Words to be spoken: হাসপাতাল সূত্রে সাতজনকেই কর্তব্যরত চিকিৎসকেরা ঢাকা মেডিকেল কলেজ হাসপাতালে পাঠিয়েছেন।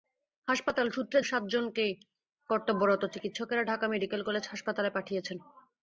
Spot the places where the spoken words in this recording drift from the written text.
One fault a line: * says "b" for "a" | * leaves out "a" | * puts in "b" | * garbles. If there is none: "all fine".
all fine